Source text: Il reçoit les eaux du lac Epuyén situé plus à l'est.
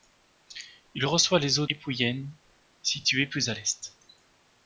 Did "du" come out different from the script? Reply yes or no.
yes